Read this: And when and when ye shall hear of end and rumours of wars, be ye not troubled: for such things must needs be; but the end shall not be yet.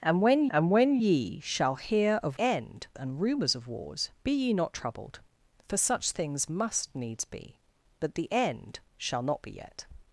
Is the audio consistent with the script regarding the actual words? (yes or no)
yes